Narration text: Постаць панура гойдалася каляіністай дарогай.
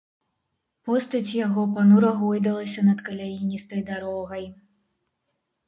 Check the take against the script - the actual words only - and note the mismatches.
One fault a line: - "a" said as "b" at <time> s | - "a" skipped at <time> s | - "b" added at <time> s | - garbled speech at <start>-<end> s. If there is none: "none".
- "яго" added at 1.4 s
- "над" added at 2.9 s